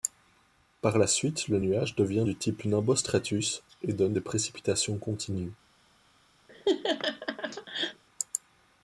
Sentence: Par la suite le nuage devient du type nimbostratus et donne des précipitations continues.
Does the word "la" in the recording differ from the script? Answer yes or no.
no